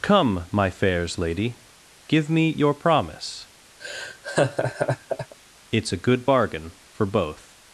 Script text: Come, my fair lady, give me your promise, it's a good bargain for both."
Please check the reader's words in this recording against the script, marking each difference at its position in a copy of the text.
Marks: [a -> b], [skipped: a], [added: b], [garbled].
Come, my [fair -> fairs] lady, give me your promise, it's a good bargain for both."